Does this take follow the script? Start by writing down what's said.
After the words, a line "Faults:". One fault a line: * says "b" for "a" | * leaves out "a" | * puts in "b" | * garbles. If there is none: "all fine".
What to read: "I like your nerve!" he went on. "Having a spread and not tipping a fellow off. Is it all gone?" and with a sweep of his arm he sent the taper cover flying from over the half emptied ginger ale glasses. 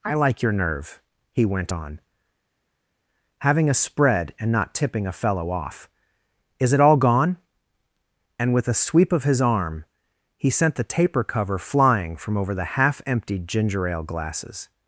"I like your nerve!" he went on. "Having a spread and not tipping a fellow off. Is it all gone?" and with a sweep of his arm he sent the taper cover flying from over the half emptied ginger ale glasses.
Faults:
all fine